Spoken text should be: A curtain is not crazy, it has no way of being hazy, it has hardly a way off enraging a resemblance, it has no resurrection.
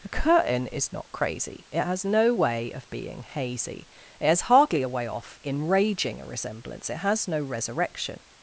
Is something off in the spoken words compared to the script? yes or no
no